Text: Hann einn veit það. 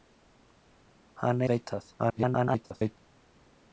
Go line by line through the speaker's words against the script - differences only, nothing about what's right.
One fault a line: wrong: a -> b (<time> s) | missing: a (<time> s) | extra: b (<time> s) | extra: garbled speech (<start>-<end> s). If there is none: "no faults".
missing: einn (1.4 s)
extra: garbled speech (2.0-3.0 s)